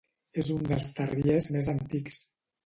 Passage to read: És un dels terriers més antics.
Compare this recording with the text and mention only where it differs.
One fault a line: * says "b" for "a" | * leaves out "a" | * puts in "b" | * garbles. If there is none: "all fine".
all fine